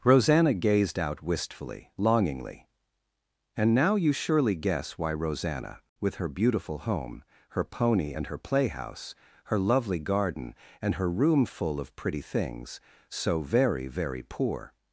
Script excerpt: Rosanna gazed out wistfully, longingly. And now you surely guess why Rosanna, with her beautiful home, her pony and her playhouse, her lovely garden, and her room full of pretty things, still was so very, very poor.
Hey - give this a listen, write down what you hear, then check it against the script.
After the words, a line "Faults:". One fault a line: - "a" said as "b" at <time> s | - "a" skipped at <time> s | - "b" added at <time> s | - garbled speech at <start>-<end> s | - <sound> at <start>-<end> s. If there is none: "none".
Rosanna gazed out wistfully, longingly. And now you surely guess why Rosanna, with her beautiful home, her pony and her playhouse, her lovely garden, and her room full of pretty things, so very, very poor.
Faults:
- "still was" skipped at 12.8 s